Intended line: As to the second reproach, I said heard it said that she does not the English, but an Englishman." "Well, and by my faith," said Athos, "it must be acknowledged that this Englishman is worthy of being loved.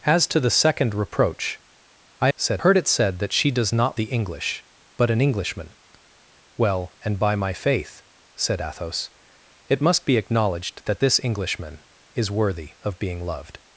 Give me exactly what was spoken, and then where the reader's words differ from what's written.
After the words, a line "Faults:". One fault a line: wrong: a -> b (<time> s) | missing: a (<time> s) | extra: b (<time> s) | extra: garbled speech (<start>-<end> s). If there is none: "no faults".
As to the second reproach, I said heard it said that she does not the English, but an Englishman." "Well, and by my faith," said Athos, "it must be acknowledged that this Englishman is worthy of being loved.
Faults:
no faults